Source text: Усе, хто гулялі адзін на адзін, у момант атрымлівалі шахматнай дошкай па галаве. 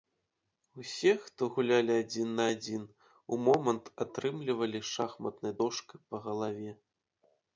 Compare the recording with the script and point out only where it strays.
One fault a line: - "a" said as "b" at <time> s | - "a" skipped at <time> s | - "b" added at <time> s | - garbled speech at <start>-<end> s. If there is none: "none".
none